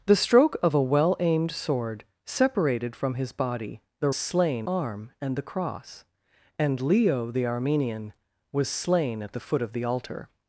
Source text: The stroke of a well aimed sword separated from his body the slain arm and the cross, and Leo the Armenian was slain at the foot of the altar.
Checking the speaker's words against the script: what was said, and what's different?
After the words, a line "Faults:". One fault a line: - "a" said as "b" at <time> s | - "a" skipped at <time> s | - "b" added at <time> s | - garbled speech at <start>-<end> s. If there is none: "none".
The stroke of a well aimed sword separated from his body the slain arm and the cross, and Leo the Armenian was slain at the foot of the altar.
Faults:
none